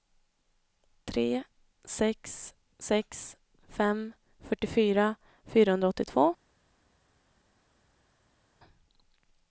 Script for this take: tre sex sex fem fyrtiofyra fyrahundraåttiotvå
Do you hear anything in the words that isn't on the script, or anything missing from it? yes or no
no